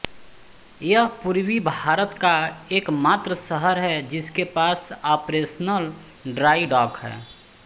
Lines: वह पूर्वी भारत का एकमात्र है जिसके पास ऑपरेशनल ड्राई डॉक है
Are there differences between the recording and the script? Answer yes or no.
yes